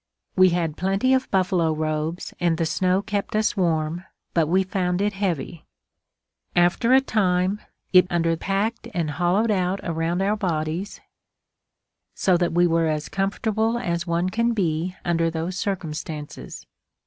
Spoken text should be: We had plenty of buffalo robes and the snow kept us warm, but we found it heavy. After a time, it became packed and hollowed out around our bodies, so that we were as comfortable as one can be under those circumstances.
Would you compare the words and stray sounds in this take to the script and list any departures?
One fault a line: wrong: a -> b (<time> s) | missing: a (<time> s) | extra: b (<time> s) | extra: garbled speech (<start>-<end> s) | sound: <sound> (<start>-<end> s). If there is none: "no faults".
wrong: became -> under (8.1 s)